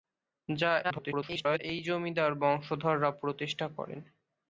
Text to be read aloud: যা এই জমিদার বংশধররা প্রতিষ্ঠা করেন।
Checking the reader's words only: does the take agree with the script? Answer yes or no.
no